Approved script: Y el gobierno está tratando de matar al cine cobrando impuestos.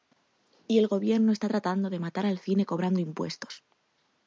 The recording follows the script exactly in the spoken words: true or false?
true